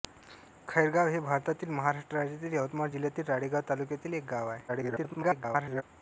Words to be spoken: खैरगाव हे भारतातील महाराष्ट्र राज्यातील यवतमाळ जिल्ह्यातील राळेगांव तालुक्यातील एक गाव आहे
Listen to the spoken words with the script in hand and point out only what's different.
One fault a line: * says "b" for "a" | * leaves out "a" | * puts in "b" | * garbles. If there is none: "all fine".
* garbles